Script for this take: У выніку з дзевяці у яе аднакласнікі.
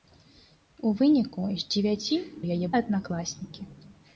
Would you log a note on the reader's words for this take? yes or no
no